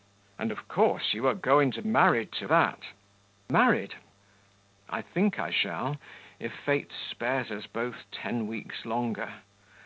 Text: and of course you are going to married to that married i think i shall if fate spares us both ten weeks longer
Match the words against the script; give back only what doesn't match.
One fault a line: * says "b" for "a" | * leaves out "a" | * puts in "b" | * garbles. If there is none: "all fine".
all fine